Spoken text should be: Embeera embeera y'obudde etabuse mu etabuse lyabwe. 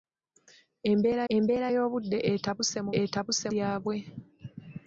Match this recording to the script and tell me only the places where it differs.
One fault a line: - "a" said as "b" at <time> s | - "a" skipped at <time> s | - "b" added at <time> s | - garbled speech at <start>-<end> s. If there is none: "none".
none